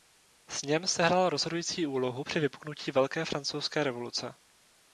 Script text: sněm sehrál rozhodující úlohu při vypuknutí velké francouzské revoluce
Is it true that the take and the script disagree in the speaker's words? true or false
false